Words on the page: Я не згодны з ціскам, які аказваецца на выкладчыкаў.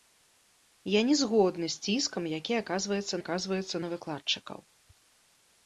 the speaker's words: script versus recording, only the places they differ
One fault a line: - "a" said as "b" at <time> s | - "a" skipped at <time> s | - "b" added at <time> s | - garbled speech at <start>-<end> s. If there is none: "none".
- "аказваецца" added at 3.2 s